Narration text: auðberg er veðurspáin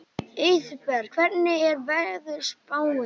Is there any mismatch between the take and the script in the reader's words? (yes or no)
yes